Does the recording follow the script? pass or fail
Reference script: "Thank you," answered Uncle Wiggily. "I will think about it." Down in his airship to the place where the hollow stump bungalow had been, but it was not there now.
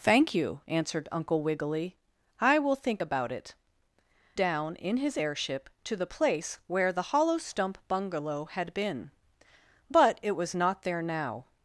pass